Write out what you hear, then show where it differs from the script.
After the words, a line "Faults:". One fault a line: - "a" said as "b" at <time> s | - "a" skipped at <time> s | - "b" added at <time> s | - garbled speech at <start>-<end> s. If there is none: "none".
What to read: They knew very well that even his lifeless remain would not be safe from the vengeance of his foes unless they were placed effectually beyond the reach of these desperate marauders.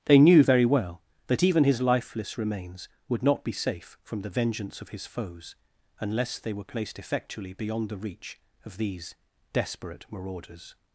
They knew very well that even his lifeless remains would not be safe from the vengeance of his foes unless they were placed effectually beyond the reach of these desperate marauders.
Faults:
- "remain" said as "remains" at 2.4 s